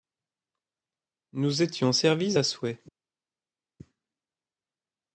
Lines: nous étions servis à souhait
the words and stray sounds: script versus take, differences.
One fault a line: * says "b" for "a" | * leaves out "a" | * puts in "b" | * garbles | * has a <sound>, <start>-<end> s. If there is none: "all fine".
all fine